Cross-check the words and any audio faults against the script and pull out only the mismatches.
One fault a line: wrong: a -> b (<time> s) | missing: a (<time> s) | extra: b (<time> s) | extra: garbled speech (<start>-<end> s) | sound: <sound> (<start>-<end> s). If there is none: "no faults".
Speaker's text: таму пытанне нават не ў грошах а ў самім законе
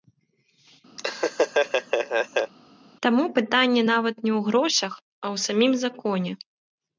sound: laugh (1.0-2.5 s)